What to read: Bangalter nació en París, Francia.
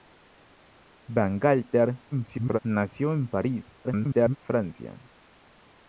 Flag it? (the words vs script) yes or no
yes